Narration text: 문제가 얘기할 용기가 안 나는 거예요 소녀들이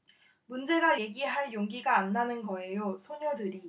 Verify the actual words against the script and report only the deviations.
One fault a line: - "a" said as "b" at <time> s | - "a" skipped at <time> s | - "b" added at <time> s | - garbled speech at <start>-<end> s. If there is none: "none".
none